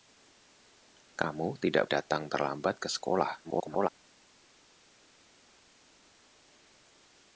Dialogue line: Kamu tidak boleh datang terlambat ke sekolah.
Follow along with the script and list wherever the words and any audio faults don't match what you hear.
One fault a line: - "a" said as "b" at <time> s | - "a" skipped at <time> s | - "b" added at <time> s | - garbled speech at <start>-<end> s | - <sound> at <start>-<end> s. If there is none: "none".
- "boleh" skipped at 1.9 s
- garbled speech at 3.4-3.9 s